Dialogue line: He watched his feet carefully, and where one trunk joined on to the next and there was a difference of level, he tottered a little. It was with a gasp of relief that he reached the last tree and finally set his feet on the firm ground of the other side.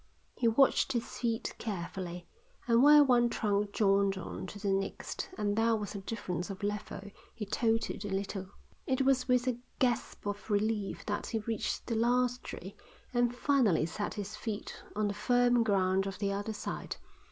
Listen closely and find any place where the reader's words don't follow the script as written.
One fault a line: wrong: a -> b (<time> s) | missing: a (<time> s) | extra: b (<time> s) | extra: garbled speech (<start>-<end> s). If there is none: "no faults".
no faults